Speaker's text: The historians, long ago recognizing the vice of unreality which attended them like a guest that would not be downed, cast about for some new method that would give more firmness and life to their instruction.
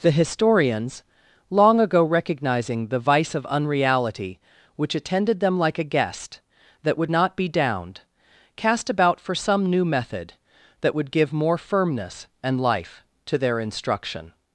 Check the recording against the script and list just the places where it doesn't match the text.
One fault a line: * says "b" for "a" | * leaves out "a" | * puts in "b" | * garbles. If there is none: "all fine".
all fine